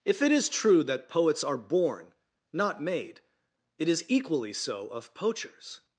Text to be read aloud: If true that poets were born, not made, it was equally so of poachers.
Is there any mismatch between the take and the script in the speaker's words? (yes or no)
yes